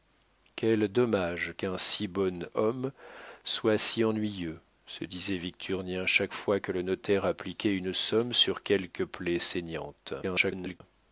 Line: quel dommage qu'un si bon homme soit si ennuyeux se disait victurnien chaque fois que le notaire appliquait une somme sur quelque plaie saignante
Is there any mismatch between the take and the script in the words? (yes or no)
yes